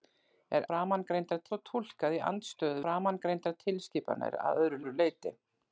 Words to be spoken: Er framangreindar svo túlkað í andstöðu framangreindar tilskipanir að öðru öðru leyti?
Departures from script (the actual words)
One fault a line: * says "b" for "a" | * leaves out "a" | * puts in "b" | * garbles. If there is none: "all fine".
all fine